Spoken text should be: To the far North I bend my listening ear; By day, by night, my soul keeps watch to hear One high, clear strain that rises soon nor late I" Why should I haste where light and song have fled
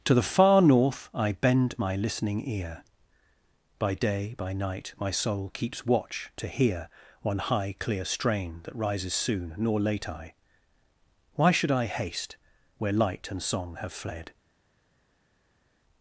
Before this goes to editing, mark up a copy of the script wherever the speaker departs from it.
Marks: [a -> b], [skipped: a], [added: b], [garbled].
To the far North I bend my listening ear; By day, by night, my soul keeps watch to hear One high, clear strain that rises soon nor late I" Why should I haste where light and song have fled